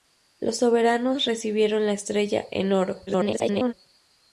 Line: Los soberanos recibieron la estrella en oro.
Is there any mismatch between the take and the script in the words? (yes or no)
yes